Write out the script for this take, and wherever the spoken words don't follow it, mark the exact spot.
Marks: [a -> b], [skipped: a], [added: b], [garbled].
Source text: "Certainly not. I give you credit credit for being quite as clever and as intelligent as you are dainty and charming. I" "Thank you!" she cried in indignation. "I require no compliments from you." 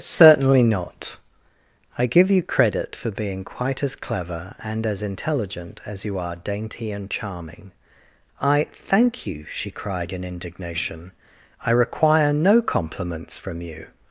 "Certainly not. I give you credit [skipped: credit] for being quite as clever and as intelligent as you are dainty and charming. I" "Thank you!" she cried in indignation. "I require no compliments from you."